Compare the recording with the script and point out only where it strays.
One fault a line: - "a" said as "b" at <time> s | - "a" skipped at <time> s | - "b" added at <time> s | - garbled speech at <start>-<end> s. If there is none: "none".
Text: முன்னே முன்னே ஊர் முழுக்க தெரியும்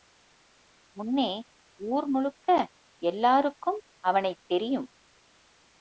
- "முன்னே" skipped at 1.3 s
- "எல்லாருக்கும் அவனைத்" added at 3.0 s